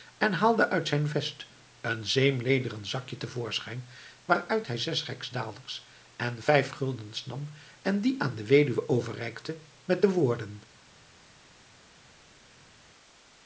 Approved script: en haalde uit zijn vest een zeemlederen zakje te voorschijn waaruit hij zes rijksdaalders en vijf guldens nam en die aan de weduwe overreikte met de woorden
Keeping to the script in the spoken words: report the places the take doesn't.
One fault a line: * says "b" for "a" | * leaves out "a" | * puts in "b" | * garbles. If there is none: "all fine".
all fine